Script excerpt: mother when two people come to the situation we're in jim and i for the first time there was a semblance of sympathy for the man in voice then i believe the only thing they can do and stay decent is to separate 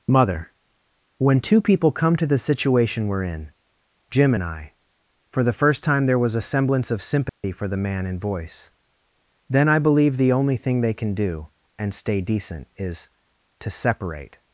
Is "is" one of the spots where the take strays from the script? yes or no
no